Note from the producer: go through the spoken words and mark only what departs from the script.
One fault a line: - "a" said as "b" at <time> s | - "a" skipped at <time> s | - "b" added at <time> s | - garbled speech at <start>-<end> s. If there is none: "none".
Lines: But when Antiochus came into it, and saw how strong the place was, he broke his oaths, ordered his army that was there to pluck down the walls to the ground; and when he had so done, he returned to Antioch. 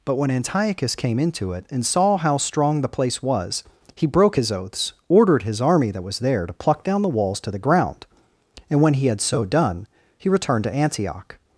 none